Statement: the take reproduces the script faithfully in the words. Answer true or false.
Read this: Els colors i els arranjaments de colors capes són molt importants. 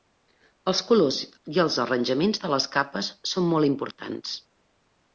false